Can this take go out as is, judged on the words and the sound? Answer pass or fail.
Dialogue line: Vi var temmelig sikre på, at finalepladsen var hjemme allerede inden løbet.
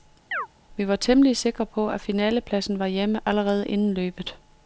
fail